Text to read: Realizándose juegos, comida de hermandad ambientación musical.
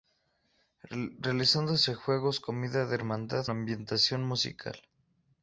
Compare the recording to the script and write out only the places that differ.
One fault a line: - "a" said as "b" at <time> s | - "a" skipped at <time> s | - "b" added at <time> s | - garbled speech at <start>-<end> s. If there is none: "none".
none